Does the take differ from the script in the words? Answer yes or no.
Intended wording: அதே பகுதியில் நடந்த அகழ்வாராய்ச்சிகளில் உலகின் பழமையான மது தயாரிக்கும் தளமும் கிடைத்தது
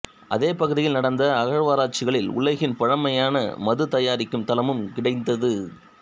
no